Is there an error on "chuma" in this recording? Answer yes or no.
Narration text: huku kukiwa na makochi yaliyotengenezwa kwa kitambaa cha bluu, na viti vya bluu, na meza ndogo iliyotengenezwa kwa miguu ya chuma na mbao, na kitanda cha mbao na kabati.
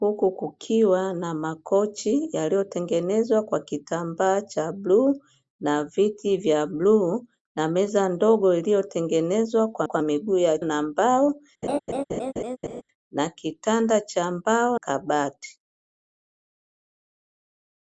yes